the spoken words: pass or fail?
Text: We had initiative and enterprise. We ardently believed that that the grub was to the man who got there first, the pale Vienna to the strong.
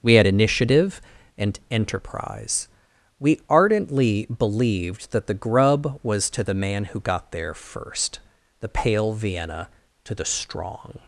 fail